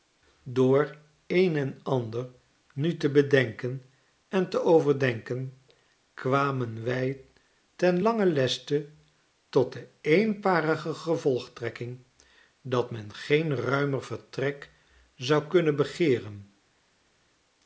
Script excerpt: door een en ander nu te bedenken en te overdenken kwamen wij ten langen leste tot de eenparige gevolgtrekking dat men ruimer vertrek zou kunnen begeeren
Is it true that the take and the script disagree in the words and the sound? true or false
true